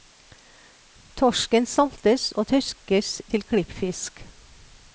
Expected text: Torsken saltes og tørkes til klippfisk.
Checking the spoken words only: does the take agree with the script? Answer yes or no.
yes